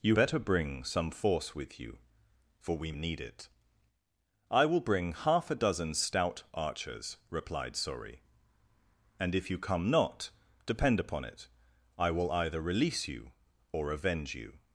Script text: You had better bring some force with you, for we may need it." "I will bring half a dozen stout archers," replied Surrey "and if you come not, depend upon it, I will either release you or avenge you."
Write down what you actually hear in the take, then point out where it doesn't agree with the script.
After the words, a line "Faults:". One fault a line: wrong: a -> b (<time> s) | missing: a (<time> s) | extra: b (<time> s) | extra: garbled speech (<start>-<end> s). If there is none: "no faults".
You better bring some force with you, for we need it." "I will bring half a dozen stout archers," replied Surrey "and if you come not, depend upon it, I will either release you or avenge you."
Faults:
missing: had (0.1 s)
missing: may (2.9 s)